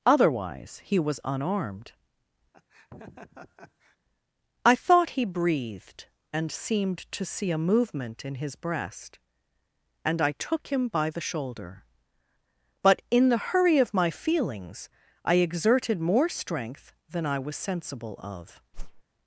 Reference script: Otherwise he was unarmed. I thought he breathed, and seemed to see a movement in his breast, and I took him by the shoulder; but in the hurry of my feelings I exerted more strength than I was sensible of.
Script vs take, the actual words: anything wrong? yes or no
no